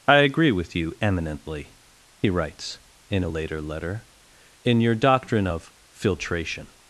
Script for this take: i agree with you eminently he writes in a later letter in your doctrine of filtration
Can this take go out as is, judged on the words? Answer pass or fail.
pass